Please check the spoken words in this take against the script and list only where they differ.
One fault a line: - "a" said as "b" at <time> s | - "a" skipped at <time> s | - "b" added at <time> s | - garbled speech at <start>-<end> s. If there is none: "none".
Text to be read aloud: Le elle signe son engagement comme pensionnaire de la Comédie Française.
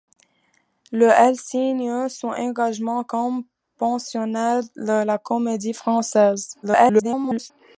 - garbled speech at 6.6-7.5 s